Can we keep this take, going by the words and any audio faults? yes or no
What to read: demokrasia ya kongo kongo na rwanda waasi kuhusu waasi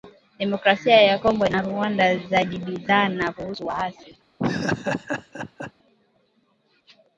no